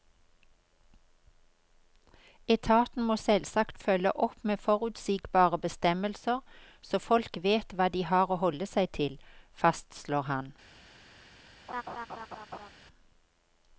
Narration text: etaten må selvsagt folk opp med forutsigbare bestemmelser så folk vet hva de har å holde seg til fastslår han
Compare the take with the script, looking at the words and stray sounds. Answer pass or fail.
fail